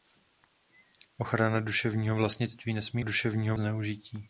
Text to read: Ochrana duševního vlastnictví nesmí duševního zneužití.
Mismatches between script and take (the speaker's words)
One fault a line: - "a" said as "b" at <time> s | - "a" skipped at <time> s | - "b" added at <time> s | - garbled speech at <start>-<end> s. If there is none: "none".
none